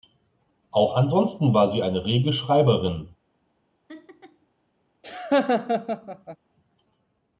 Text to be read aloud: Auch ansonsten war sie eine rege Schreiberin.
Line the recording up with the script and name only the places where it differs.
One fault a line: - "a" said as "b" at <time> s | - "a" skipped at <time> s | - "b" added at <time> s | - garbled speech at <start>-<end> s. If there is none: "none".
none